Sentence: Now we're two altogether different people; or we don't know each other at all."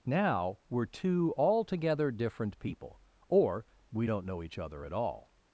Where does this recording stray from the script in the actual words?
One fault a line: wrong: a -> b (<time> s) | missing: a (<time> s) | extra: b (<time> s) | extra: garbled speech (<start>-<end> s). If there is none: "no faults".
no faults